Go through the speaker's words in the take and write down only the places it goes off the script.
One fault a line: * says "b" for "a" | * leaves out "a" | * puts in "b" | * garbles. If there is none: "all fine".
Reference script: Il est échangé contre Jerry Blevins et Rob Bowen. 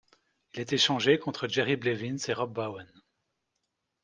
all fine